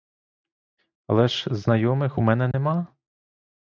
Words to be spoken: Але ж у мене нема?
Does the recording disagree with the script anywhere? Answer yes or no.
yes